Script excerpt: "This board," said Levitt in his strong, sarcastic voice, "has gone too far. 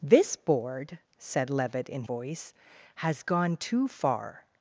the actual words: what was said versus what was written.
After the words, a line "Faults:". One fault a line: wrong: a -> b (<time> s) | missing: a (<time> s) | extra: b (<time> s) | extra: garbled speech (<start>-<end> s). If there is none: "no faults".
"This board," said Levitt in voice, "has gone too far.
Faults:
missing: his strong sarcastic (2.0 s)